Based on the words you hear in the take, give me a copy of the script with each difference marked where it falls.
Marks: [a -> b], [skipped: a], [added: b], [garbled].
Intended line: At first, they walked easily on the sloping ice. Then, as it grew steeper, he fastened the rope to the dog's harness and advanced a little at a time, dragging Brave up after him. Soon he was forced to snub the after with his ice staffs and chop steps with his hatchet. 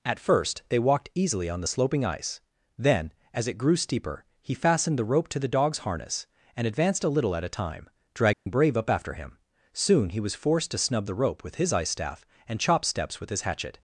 At first, they walked easily on the sloping ice. Then, as it grew steeper, he fastened the rope to the dog's harness and advanced a little at a time, dragging Brave up after him. Soon he was forced to snub the [after -> rope] with his ice [staffs -> staff] and chop steps with his hatchet.